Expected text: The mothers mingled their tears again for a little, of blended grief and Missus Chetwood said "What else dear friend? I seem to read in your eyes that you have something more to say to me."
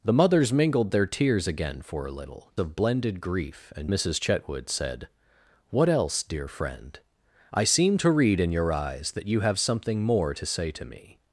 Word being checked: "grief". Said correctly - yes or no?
yes